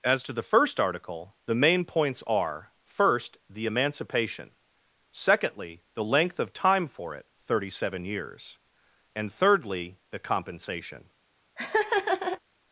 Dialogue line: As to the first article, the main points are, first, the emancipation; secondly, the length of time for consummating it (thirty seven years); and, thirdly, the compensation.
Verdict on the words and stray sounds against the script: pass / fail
fail